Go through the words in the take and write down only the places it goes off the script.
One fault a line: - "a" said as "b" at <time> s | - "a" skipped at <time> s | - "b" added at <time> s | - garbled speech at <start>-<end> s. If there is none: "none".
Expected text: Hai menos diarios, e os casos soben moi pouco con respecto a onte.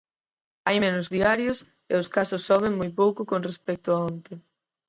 none